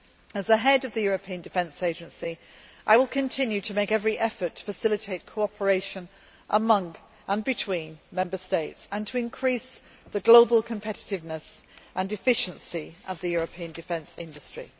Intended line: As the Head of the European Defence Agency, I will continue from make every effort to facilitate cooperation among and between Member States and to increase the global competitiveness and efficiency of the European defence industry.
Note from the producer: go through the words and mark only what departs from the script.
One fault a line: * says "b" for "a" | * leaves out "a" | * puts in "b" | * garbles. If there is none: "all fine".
* says "to" for "from"